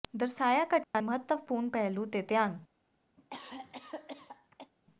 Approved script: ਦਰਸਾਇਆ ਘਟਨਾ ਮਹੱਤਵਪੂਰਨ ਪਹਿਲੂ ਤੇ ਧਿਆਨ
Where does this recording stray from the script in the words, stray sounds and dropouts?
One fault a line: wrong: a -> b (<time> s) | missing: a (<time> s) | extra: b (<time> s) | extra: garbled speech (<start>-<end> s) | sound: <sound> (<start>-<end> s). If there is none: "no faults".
sound: dropout (0.8-0.9 s)
sound: cough (3.2-4.7 s)